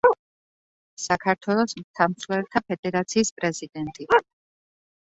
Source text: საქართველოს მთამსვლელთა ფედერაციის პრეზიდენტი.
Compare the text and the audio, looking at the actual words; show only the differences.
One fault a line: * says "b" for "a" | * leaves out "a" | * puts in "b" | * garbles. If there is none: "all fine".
all fine